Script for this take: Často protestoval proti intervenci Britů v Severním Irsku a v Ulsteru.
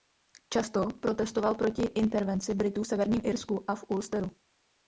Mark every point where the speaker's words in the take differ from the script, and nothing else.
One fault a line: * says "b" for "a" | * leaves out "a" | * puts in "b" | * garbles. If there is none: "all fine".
all fine